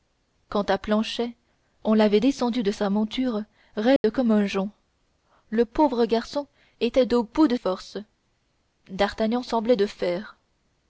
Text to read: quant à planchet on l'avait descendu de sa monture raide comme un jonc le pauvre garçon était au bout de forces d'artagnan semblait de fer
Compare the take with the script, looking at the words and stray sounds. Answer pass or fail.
fail